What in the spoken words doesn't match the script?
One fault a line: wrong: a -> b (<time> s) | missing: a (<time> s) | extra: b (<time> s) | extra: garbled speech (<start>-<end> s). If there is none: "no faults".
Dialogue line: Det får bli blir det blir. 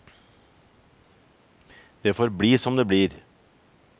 wrong: blir -> som (2.6 s)